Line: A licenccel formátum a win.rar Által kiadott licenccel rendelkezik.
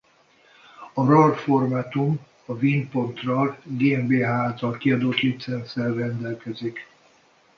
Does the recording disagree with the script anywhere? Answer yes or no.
yes